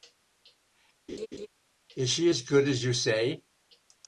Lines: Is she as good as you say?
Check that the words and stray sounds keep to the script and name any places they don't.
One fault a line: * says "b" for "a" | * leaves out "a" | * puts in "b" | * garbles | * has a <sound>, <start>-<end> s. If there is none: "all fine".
* has a laugh, 1.1-1.5 s